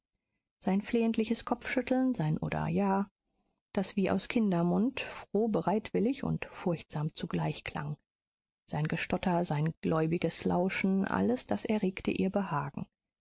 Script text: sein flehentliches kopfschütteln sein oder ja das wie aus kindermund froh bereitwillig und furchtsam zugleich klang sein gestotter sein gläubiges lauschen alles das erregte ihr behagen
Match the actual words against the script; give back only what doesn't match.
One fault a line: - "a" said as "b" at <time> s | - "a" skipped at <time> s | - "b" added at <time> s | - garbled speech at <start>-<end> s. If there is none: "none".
none